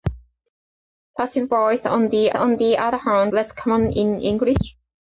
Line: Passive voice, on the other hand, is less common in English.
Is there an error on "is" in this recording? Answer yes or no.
yes